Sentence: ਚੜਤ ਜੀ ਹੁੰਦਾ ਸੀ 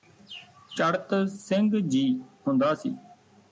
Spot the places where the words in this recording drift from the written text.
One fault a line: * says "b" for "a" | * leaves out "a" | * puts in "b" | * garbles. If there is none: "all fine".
* puts in "ਸਿੰਘ"